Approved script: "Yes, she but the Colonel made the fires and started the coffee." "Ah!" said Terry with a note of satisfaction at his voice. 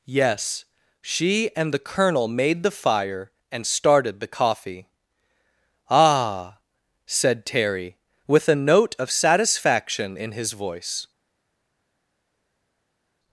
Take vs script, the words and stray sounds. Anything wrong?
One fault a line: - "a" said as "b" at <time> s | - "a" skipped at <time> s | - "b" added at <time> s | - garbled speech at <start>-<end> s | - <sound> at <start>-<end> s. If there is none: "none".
- "but" said as "and" at 1.6 s
- "fires" said as "fire" at 2.7 s
- "at" said as "in" at 10.2 s